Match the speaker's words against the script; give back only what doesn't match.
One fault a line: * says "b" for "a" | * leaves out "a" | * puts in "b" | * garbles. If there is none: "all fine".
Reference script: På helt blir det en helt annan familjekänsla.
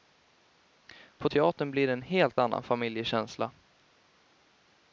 * says "teatern" for "helt"